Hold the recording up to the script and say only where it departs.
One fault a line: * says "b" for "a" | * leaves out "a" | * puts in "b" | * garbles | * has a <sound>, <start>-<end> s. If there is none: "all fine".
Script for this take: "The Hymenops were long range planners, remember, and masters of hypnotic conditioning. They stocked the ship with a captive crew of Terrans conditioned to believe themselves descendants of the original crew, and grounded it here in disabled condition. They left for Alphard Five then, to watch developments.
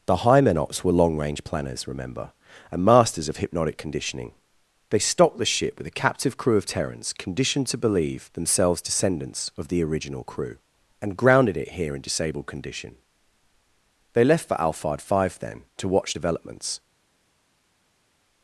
all fine